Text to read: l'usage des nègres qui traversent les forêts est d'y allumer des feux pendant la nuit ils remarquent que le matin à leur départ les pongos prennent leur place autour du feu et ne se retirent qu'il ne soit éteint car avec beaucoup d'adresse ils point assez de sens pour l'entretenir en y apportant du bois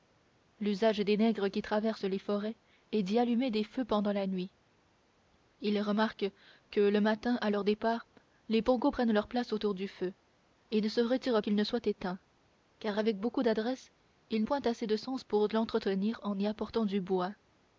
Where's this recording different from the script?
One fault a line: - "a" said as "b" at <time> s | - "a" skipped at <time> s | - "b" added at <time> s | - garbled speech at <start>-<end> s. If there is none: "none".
none